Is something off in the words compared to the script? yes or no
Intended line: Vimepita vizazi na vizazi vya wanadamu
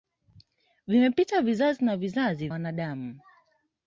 yes